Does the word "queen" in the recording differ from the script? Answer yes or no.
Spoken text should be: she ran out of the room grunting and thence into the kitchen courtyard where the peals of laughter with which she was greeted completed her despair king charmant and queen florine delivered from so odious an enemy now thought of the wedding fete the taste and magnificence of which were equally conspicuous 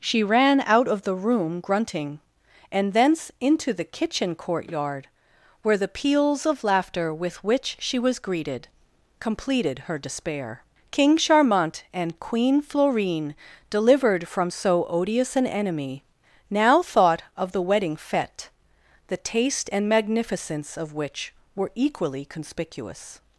no